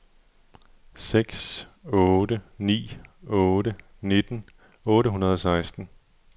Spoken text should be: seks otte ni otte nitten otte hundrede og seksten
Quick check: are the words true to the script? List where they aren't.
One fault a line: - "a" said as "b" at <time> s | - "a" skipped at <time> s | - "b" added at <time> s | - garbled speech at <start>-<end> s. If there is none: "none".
none